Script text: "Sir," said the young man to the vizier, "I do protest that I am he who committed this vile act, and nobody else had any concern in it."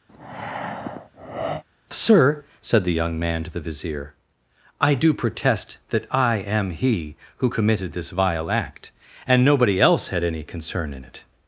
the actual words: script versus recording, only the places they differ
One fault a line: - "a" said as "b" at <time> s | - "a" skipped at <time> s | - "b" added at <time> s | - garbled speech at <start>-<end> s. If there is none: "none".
none